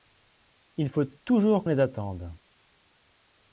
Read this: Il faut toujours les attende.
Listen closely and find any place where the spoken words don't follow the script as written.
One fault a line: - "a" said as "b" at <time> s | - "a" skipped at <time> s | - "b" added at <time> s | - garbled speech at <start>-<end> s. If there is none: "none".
none